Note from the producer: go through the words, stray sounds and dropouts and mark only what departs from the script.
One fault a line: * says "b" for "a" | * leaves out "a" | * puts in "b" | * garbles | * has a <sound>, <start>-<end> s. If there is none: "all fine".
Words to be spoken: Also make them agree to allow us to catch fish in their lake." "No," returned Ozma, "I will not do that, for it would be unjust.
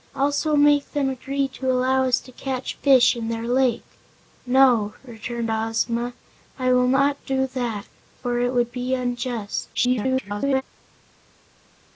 * garbles